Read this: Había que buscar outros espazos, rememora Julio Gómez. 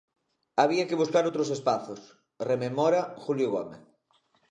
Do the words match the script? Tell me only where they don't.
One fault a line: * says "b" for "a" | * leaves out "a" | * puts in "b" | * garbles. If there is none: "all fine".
all fine